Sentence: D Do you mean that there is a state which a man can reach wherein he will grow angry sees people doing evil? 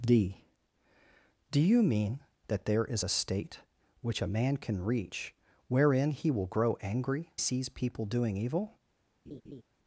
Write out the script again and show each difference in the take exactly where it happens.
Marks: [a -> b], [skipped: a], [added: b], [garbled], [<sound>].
D Do you mean that there is a state which a man can reach wherein he will grow angry sees people doing evil? [laugh]